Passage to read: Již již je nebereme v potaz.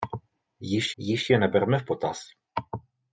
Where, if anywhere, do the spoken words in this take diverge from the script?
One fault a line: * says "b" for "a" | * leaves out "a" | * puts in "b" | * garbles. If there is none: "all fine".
all fine